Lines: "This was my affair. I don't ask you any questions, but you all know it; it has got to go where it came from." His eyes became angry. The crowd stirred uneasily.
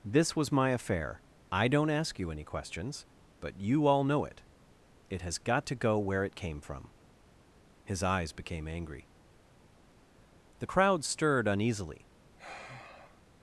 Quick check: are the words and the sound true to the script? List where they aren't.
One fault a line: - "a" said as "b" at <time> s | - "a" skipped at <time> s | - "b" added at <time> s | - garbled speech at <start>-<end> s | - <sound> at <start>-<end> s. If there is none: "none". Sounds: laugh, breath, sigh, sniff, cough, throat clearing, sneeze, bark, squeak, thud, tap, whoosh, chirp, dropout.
- sigh at 12.4-13.2 s